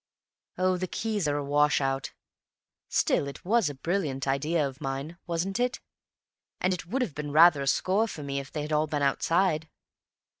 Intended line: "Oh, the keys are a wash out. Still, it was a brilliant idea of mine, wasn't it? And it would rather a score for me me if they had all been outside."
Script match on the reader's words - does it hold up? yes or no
no